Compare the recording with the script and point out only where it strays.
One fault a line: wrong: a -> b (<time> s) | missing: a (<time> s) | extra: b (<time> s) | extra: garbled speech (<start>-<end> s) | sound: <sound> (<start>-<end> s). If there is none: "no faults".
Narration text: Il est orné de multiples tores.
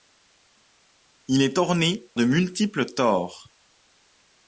no faults